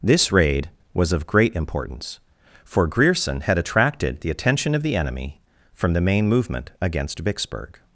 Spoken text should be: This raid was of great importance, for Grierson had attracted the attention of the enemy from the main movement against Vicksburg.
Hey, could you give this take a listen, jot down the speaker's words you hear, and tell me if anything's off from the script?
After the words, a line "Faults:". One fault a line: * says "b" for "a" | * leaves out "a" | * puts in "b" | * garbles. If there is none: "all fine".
This raid was of great importance, for Grierson had attracted the attention of the enemy from the main movement against Vicksburg.
Faults:
all fine